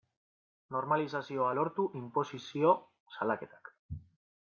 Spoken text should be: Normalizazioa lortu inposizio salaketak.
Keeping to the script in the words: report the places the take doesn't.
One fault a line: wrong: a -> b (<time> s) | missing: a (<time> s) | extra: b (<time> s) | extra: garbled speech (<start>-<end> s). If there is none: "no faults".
no faults